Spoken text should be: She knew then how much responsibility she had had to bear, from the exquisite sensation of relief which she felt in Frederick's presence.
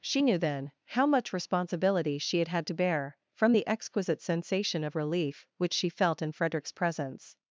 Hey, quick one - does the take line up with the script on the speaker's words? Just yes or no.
yes